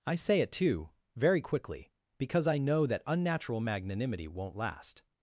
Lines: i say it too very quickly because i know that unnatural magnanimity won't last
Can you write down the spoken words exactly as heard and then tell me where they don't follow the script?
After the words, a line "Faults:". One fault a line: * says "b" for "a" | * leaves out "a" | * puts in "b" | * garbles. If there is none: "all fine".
i say it too very quickly because i know that unnatural magnanimity won't last
Faults:
all fine